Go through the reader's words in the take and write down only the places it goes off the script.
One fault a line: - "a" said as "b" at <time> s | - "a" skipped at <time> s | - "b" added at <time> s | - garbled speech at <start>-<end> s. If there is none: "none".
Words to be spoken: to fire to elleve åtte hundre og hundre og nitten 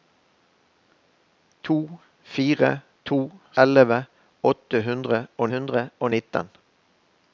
none